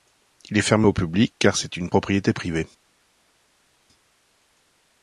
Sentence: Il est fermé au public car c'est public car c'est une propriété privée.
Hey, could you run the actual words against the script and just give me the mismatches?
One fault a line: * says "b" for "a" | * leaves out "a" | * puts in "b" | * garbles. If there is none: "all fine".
* leaves out "public car c'est"